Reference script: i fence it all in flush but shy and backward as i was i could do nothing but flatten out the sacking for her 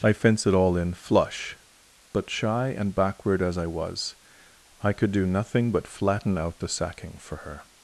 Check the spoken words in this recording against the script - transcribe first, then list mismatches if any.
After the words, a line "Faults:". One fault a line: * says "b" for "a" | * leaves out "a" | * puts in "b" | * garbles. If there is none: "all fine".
i fence it all in flush but shy and backward as i was i could do nothing but flatten out the sacking for her
Faults:
all fine